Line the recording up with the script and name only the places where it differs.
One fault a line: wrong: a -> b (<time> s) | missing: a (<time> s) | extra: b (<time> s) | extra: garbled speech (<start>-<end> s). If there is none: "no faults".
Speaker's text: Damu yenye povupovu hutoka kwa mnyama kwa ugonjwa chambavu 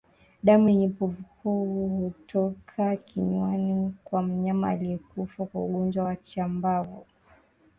extra: kinywani (3.0 s)
extra: aliyekufa (4.7 s)
extra: wa (6.0 s)